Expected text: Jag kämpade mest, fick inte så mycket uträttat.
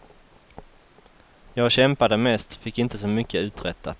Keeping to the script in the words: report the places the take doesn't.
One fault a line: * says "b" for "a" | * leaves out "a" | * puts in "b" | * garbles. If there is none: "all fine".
all fine